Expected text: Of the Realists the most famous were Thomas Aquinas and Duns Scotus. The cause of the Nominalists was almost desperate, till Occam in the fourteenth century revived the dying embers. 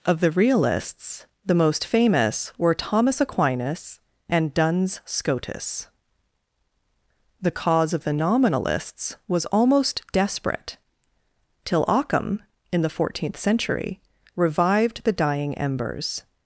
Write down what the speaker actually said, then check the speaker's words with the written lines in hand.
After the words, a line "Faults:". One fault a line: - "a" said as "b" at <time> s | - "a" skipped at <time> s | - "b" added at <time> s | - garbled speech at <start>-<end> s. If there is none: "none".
Of the Realists the most famous were Thomas Aquinas and Duns Scotus. The cause of the Nominalists was almost desperate, till Occam in the fourteenth century revived the dying embers.
Faults:
none